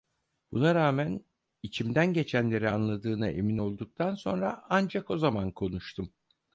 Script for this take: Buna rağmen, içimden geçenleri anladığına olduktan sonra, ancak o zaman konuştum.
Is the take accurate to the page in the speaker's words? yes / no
no